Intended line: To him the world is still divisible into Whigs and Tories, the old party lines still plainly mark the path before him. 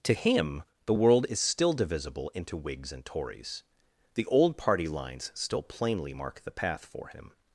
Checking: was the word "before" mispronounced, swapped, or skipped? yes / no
yes